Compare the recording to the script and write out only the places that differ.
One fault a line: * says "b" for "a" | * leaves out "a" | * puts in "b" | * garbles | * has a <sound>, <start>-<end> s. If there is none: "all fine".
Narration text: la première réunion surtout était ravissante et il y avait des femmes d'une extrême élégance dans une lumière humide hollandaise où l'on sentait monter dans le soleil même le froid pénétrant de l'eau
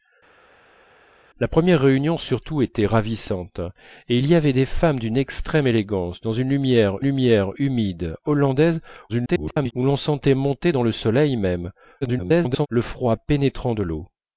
* puts in "lumière"
* garbles
* garbles